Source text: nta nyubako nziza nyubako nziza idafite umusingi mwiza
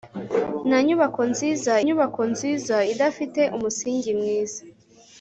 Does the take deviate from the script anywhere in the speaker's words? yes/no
no